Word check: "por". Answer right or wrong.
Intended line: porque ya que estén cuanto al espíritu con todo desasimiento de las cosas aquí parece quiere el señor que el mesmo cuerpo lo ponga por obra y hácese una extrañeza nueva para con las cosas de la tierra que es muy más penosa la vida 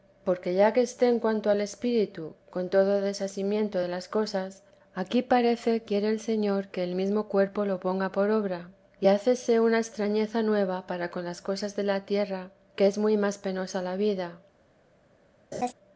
right